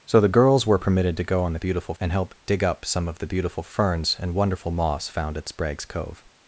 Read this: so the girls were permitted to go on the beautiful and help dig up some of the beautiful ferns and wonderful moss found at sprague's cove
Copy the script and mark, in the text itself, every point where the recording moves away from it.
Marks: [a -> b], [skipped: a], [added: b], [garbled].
so the girls were permitted to go on the beautiful and help dig up some of the beautiful ferns and wonderful moss found at sprague's cove